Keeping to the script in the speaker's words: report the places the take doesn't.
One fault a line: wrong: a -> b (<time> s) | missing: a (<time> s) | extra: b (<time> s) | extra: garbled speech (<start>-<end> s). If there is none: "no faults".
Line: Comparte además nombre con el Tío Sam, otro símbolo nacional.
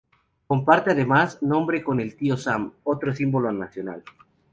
no faults